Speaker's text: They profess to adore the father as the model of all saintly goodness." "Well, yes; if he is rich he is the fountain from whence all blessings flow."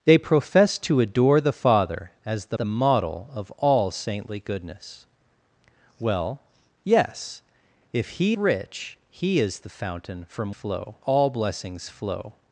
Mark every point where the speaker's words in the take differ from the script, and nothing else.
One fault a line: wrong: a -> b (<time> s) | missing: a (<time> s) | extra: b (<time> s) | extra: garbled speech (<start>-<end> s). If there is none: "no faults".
extra: the (2.5 s)
missing: is (8.4 s)
wrong: whence -> flow (10.5 s)